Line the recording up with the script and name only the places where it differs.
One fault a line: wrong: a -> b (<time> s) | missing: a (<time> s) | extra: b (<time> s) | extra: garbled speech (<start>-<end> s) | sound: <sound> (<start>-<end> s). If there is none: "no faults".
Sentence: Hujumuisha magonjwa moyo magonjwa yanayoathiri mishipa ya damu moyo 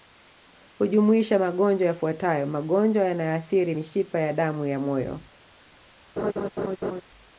wrong: moyo -> yafuatayo (1.9 s)
extra: ya (4.7 s)
sound: laugh (6.2-7.0 s)